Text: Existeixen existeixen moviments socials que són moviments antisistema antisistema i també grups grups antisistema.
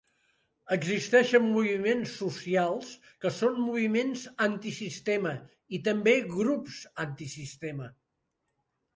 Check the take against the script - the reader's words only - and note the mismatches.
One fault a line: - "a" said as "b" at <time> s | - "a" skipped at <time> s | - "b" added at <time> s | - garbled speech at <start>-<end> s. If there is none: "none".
- "existeixen" skipped at 1.4 s
- "antisistema" skipped at 5.3 s
- "grups" skipped at 6.8 s